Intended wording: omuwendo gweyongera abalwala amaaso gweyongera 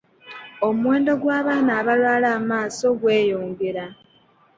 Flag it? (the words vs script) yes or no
yes